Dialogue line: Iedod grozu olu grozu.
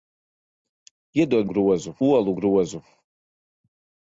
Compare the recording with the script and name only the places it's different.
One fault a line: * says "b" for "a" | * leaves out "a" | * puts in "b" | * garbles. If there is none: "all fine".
all fine